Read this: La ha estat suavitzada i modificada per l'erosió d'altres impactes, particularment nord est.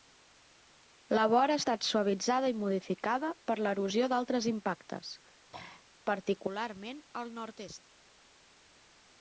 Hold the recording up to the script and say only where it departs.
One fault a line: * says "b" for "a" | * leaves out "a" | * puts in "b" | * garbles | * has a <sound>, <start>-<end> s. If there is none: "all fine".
* puts in "vora"
* has a throat clearing, 5.5-5.9 s
* puts in "al"